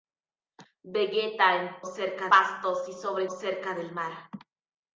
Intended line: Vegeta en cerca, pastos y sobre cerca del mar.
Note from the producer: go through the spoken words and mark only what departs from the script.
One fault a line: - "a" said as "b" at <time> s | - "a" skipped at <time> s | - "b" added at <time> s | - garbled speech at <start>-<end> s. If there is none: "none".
none